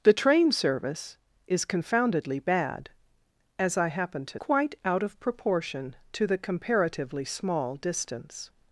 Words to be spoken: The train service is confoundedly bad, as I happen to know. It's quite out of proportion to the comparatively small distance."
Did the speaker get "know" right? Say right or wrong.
wrong